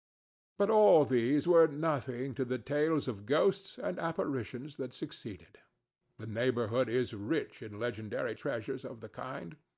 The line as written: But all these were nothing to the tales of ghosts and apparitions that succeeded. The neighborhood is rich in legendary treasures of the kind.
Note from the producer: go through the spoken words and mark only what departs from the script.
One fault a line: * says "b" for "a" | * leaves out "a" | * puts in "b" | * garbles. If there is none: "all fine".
all fine